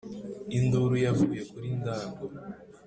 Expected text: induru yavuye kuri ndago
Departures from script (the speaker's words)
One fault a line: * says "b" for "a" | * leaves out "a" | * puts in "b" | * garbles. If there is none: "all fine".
all fine